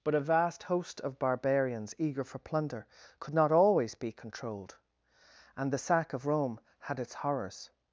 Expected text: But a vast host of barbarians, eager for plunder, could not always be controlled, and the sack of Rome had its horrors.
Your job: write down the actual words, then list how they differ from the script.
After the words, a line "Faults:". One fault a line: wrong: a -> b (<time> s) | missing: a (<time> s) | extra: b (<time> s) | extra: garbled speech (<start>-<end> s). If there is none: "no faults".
But a vast host of barbarians, eager for plunder, could not always be controlled, and the sack of Rome had its horrors.
Faults:
no faults